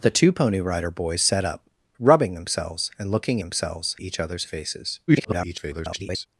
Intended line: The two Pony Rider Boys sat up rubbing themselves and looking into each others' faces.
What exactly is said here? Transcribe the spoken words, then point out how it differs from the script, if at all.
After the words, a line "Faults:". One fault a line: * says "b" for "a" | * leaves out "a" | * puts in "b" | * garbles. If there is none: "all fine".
The two Pony Rider Boys sat up rubbing themselves and looking themselves each others' faces. [garbled]
Faults:
* says "themselves" for "into"
* garbles